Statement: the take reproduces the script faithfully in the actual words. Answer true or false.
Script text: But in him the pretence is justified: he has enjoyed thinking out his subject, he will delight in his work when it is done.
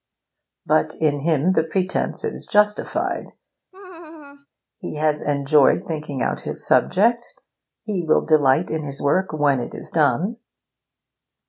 true